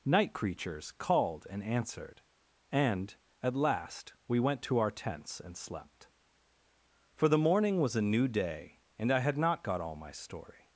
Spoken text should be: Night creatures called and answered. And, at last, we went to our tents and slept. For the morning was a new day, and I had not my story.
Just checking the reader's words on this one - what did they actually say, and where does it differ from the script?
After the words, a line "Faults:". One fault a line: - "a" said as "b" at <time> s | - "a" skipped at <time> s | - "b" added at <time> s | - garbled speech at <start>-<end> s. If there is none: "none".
Night creatures called and answered. And, at last, we went to our tents and slept. For the morning was a new day, and I had not got all my story.
Faults:
- "got all" added at 9.6 s